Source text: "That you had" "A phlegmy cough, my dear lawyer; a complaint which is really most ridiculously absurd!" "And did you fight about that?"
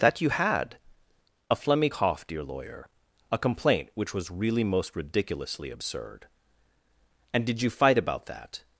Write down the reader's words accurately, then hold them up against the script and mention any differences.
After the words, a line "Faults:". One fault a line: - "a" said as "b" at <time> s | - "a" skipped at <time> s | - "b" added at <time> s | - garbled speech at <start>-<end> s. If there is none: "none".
"That you had" "A phlegmy cough, dear lawyer; a complaint which was really most ridiculously absurd!" "And did you fight about that?"
Faults:
- "my" skipped at 2.2 s
- "is" said as "was" at 4.1 s